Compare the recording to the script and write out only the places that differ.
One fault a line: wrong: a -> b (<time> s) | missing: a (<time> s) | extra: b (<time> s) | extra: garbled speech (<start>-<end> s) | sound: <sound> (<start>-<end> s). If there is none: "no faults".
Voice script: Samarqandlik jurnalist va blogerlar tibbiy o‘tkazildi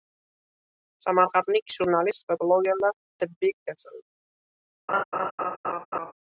sound: laugh (4.9-6.1 s)